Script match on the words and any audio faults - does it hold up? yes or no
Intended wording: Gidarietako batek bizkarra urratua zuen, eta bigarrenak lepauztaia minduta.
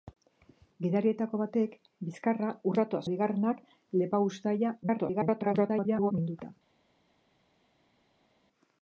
no